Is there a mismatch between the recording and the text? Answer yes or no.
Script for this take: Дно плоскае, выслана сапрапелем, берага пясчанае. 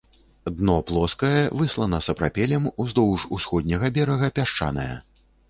yes